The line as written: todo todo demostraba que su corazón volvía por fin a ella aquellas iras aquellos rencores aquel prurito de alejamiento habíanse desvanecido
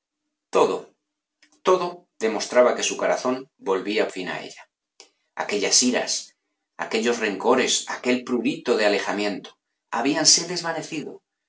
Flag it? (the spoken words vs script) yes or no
yes